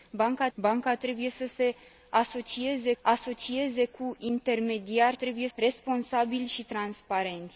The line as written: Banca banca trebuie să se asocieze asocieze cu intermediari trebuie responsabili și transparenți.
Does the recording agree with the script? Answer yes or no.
yes